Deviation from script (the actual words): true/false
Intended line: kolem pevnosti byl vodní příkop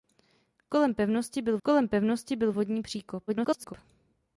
true